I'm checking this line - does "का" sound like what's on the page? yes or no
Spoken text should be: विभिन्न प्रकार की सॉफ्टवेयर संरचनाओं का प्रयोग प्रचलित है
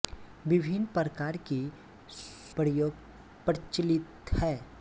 no